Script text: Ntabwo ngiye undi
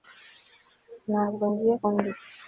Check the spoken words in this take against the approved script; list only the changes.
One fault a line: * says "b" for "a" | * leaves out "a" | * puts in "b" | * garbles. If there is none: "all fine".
all fine